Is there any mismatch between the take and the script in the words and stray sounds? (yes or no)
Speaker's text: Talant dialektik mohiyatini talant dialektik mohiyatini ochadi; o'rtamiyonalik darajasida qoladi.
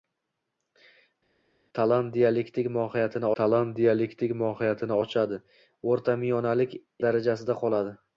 no